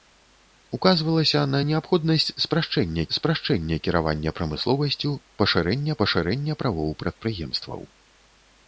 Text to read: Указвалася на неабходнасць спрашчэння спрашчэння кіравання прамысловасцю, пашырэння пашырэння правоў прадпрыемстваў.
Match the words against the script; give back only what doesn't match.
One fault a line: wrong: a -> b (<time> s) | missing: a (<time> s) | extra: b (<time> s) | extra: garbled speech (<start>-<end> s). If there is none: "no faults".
no faults